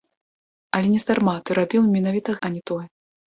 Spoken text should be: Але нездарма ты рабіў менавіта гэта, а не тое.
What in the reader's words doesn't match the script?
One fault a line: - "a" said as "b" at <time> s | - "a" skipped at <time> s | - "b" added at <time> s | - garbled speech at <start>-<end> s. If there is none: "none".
- "гэта" skipped at 2.3 s